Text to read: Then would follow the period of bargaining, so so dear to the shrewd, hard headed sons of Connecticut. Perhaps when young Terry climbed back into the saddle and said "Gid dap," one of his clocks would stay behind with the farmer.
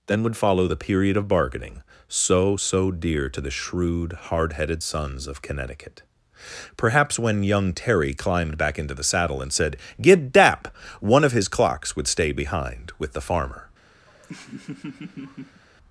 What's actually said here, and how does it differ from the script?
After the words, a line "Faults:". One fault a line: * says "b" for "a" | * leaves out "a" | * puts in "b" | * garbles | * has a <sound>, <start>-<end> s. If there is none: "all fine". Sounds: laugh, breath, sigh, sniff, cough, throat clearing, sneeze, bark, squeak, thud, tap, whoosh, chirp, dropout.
Then would follow the period of bargaining, so so dear to the shrewd, hard headed sons of Connecticut. Perhaps when young Terry climbed back into the saddle and said "Gid dap," one of his clocks would stay behind with the farmer.
Faults:
* has a laugh, 14.1-15.6 s